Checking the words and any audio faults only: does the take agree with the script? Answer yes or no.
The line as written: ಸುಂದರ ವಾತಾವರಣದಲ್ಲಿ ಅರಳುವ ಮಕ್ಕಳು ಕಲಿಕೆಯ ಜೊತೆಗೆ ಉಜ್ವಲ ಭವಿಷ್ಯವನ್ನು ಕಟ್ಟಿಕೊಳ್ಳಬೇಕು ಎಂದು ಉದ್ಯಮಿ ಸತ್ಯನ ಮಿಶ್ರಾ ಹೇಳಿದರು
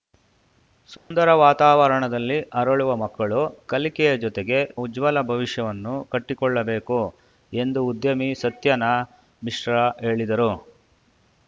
no